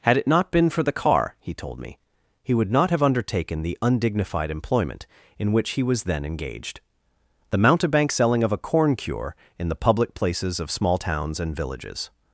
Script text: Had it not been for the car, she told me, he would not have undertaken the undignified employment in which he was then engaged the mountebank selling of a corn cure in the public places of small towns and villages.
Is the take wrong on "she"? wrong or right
wrong